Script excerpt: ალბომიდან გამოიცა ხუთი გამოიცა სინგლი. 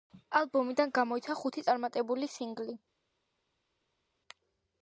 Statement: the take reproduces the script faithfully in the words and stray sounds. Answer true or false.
false